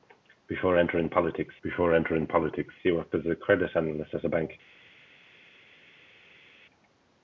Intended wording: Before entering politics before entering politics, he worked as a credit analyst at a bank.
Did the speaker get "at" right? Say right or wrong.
right